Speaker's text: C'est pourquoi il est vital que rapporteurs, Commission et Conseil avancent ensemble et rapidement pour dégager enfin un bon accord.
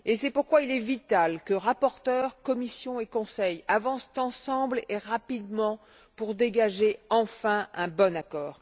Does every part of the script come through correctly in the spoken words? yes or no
yes